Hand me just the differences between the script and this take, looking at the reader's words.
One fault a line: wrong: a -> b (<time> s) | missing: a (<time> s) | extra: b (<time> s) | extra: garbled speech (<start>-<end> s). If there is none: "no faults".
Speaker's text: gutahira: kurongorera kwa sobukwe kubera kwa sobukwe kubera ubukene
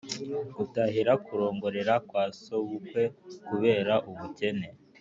missing: kwa sobukwe kubera (3.9 s)